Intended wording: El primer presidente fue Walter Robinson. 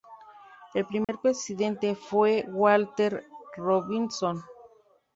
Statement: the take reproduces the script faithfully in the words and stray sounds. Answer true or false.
false